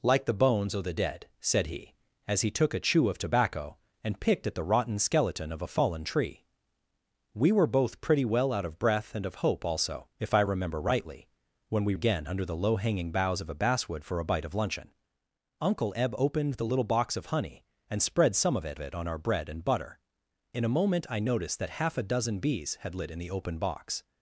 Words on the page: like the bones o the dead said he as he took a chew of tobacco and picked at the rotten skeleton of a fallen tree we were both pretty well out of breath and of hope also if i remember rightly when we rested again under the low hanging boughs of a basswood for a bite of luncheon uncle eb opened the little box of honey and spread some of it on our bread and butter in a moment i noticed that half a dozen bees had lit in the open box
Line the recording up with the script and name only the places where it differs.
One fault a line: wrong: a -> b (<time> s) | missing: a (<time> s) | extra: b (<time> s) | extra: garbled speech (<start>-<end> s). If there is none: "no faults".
missing: rested (11.9 s)
extra: it (18.8 s)